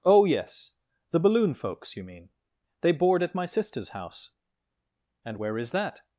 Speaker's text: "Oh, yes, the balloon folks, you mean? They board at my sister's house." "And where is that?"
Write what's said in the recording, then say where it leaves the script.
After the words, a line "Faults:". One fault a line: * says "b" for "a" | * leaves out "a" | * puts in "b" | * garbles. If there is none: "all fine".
"Oh, yes, the balloon folks, you mean? They board at my sister's house." "And where is that?"
Faults:
all fine